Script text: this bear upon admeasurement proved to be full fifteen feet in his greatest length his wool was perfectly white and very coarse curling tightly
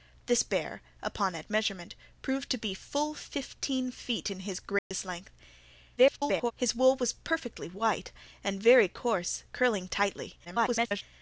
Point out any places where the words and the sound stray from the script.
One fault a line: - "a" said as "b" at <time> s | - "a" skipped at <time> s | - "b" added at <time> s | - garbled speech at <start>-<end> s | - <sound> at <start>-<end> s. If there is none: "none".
- dropout at 4.8-4.9 s
- garbled speech at 6.0-6.5 s
- garbled speech at 10.4-11.0 s